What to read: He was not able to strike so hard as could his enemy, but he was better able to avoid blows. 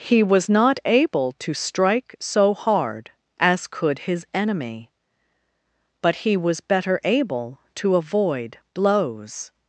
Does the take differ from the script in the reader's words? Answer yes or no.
no